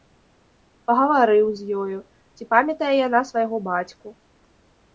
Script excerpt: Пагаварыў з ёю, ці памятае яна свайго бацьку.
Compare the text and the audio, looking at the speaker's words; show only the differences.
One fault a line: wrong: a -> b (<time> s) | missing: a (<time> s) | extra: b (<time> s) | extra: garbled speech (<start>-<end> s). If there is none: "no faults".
no faults